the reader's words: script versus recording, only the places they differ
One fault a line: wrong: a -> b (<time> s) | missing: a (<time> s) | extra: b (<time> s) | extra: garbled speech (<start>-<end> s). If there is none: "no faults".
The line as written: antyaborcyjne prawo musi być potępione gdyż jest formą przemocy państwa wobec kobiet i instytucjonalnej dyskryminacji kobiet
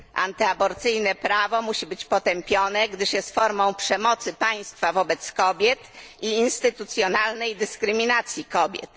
no faults